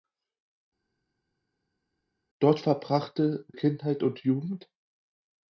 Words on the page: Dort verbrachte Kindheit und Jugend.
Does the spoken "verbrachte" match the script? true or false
true